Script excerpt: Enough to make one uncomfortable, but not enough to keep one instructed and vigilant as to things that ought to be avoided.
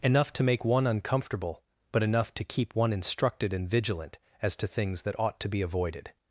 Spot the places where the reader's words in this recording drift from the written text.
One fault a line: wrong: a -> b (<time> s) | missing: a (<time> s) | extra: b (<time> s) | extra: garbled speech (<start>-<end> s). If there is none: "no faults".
missing: not (2.0 s)